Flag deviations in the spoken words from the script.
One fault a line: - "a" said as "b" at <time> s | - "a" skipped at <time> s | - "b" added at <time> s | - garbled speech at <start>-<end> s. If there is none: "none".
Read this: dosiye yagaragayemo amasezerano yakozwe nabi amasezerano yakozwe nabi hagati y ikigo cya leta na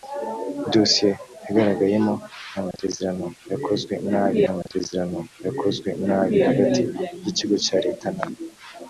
none